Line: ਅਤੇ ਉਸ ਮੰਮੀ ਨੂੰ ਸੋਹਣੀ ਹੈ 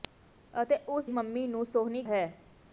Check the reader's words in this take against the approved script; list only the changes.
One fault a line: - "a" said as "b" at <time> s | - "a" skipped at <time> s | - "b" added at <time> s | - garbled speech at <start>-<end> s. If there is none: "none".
none